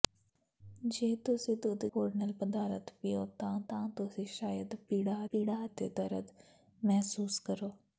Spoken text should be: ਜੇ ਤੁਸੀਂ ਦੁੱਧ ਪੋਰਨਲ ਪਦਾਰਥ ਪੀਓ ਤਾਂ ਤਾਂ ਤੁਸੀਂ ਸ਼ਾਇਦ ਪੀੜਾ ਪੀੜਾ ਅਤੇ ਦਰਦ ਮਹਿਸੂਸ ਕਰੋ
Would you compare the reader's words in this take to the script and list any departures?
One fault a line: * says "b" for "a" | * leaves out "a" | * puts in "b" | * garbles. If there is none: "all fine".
all fine